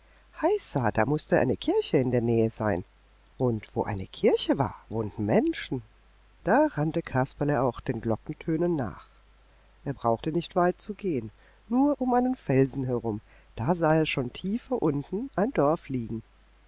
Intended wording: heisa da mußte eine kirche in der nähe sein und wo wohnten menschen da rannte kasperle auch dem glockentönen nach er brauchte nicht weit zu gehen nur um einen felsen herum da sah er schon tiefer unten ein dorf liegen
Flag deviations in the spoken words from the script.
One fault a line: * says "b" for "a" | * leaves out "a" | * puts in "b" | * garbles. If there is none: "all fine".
* puts in "eine kirche war"
* says "den" for "dem"